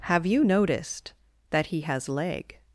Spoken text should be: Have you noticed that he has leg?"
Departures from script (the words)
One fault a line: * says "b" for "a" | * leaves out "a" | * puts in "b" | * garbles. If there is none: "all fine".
all fine